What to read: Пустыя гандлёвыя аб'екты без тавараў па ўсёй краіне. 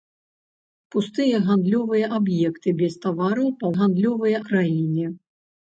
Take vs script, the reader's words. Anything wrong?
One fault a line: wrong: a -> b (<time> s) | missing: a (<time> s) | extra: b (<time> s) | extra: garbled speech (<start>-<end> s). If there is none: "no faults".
wrong: ўсёй -> гандлёвыя (3.8 s)